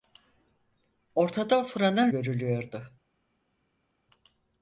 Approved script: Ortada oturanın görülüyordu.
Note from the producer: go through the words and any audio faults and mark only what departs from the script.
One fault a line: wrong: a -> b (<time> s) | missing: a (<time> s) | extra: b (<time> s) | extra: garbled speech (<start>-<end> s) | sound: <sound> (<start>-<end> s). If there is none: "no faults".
no faults